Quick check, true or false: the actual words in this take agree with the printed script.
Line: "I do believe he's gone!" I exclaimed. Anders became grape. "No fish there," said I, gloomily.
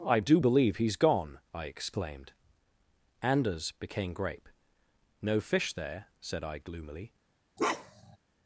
true